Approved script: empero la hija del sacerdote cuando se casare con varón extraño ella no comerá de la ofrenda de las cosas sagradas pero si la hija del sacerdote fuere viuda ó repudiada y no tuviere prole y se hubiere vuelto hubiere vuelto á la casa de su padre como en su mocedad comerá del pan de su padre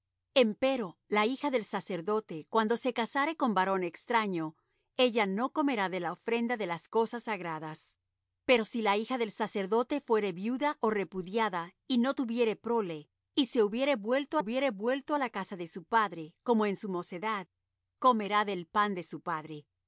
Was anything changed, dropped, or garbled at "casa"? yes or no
no